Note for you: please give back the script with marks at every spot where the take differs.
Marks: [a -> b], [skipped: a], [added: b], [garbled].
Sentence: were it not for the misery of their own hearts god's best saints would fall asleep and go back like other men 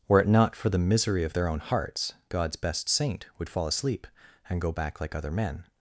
were it not for the misery of their own hearts god's best [saints -> saint] would fall asleep and go back like other men